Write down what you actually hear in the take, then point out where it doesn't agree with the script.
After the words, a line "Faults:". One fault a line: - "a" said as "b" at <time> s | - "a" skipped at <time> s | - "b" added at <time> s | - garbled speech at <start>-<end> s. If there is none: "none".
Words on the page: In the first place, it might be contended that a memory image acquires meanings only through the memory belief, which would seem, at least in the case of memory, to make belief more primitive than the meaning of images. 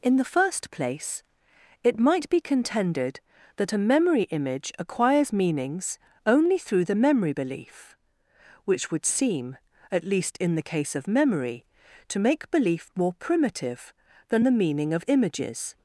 In the first place, it might be contended that a memory image acquires meanings only through the memory belief, which would seem, at least in the case of memory, to make belief more primitive than the meaning of images.
Faults:
none